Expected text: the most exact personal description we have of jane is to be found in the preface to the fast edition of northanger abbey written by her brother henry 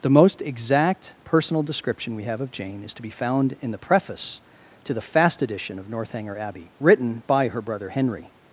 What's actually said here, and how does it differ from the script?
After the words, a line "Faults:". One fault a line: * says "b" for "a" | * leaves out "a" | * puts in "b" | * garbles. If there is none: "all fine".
the most exact personal description we have of jane is to be found in the preface to the fast edition of northanger abbey written by her brother henry
Faults:
all fine